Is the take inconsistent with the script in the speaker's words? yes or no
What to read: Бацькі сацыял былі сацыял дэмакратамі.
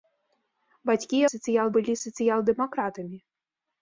no